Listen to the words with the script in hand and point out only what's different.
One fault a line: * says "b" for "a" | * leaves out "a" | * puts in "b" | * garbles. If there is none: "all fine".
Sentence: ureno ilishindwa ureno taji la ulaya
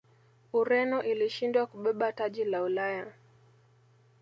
* says "kubeba" for "ureno"